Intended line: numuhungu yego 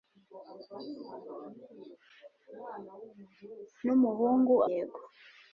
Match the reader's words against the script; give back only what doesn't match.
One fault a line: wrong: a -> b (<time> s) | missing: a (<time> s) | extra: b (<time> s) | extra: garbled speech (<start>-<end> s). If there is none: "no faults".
no faults